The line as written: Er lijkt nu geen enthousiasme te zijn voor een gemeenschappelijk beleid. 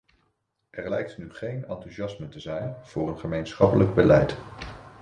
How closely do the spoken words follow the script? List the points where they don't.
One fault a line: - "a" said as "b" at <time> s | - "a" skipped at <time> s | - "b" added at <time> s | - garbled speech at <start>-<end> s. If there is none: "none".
none